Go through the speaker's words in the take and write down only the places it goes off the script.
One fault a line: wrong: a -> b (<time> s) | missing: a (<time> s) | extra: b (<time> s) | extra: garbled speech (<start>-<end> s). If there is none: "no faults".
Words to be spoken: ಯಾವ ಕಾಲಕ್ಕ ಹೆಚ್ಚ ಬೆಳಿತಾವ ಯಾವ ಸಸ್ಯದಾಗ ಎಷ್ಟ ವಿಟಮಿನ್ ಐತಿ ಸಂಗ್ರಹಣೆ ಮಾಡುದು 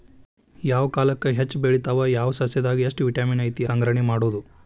no faults